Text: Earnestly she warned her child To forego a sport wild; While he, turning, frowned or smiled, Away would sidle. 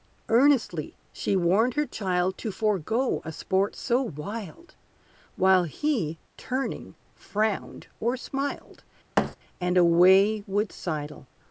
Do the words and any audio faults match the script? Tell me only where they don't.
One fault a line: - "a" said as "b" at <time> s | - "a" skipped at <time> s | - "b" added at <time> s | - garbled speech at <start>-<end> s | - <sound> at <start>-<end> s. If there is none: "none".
- "so" added at 3.8 s
- thud at 9.2-9.4 s
- "And" added at 9.6 s